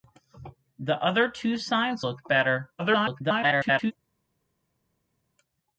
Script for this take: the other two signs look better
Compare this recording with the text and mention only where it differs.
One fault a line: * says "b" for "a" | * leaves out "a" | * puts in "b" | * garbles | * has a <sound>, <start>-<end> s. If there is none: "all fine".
* garbles